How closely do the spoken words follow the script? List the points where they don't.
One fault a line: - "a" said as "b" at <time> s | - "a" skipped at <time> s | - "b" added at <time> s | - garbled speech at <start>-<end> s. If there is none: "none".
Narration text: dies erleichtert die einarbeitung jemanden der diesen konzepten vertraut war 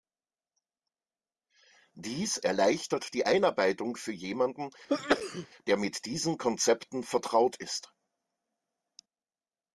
- "für" added at 4.0 s
- "mit" added at 5.8 s
- "war" said as "ist" at 7.6 s